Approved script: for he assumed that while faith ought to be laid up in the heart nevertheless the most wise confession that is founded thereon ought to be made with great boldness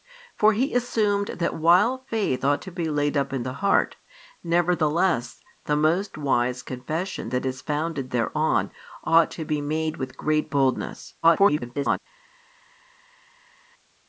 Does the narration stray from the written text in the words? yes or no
yes